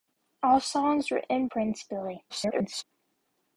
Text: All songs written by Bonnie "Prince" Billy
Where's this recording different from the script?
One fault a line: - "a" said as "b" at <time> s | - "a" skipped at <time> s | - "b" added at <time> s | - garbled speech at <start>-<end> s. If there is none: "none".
- "by Bonnie" skipped at 1.5 s
- garbled speech at 2.3-2.8 s